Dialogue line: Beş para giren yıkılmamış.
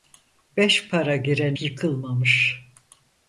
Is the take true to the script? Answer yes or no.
yes